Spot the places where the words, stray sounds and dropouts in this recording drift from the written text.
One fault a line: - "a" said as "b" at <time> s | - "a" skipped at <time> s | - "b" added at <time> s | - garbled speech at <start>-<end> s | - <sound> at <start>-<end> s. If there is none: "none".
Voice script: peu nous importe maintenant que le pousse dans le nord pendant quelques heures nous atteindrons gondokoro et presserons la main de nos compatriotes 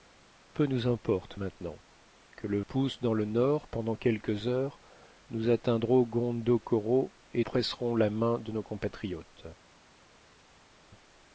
none